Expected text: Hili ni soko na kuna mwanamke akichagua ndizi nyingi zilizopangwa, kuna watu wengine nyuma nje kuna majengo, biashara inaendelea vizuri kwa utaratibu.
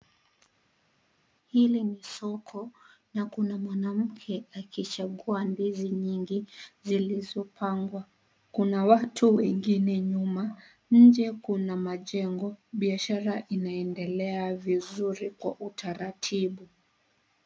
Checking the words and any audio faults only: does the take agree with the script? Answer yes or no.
yes